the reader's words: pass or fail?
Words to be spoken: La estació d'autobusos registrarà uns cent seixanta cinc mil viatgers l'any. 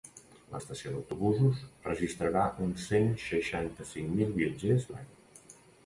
pass